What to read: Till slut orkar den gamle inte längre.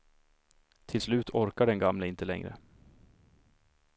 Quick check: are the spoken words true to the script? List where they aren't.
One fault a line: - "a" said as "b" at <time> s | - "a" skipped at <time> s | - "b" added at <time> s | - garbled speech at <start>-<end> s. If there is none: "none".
none